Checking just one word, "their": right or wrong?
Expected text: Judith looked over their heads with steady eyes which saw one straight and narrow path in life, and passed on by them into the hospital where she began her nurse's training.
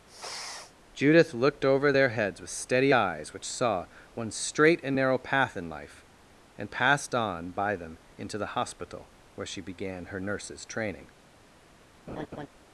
right